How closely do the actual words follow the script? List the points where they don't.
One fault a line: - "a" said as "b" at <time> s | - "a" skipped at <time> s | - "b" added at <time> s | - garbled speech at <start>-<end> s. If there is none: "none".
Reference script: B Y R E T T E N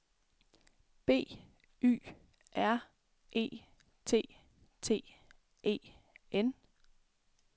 none